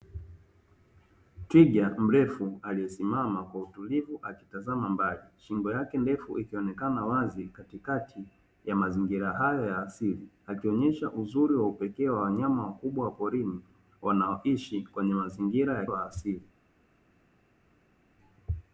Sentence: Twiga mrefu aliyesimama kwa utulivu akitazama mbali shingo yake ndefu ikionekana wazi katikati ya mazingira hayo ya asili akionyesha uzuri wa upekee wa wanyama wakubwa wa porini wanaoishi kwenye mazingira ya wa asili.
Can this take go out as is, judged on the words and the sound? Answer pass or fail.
pass